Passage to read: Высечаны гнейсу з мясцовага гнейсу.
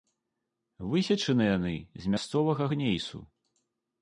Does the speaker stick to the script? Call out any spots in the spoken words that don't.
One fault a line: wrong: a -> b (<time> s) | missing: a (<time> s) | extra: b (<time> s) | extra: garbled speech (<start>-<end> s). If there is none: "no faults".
wrong: гнейсу -> яны (1.6 s)